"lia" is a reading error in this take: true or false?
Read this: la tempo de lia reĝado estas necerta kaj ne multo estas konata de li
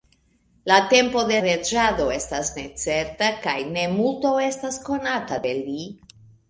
true